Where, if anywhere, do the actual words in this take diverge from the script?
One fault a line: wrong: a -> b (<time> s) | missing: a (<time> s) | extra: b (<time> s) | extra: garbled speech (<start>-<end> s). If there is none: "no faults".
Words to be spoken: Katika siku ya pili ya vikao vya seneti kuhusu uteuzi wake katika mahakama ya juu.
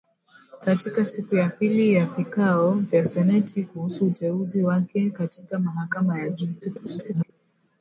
extra: garbled speech (6.6-7.3 s)